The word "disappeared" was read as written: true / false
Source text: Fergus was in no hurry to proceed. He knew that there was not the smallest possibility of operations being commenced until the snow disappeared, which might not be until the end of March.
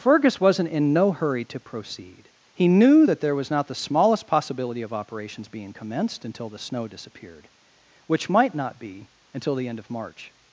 true